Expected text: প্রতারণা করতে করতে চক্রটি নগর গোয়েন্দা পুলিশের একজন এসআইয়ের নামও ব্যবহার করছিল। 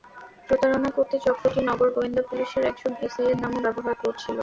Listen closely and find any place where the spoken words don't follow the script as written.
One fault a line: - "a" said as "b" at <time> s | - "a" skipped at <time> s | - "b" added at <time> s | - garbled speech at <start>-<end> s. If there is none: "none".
- "করতে" skipped at 1.1 s